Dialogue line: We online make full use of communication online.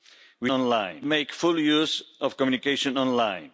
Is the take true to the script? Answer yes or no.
yes